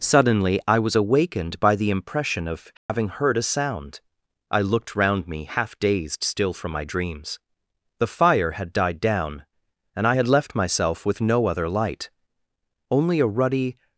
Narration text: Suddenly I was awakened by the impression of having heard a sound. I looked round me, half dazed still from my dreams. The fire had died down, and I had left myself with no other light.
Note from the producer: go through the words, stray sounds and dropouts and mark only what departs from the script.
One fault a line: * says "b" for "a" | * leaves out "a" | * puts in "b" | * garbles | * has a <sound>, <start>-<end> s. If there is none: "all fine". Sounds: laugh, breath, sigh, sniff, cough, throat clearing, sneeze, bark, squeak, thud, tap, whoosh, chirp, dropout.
* has a dropout, 2.8-2.9 s
* puts in "Only a ruddy"